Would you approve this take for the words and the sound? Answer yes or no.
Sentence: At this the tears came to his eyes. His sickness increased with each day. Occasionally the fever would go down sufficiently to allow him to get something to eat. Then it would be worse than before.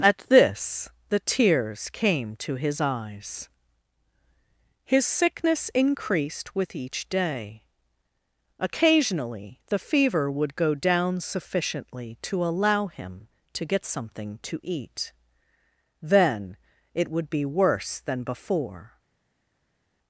yes